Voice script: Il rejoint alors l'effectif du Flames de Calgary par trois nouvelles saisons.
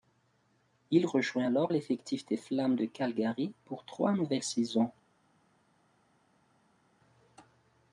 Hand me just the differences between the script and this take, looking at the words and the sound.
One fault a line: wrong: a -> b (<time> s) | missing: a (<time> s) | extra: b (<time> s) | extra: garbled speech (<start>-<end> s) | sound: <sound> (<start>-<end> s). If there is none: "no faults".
wrong: du -> des (2.3 s)
wrong: par -> pour (3.6 s)